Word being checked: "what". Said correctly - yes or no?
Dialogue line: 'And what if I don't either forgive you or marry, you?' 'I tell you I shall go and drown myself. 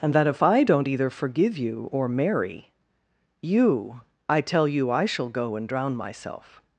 no